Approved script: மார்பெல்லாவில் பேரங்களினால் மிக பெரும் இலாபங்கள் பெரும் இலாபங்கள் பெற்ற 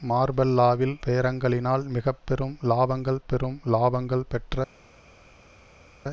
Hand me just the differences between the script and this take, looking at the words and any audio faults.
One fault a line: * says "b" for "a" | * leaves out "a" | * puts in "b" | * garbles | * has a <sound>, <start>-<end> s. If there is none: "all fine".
all fine